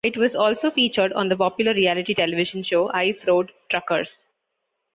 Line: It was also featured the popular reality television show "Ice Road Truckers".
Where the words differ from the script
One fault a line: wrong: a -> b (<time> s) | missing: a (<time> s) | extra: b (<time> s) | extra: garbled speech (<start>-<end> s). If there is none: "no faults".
extra: on (1.1 s)